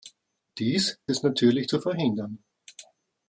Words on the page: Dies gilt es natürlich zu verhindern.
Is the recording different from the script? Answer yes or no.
yes